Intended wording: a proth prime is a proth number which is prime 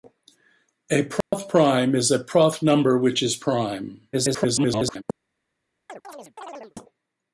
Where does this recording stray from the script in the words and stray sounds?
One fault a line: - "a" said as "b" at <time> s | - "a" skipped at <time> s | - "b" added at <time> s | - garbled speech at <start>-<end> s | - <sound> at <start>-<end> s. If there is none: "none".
- dropout at 1.2-1.3 s
- garbled speech at 4.1-5.0 s
- chirp at 5.9-6.8 s